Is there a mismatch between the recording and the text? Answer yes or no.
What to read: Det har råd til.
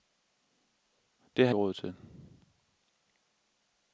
no